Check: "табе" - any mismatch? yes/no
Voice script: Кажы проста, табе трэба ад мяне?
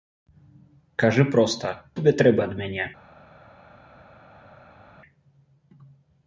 no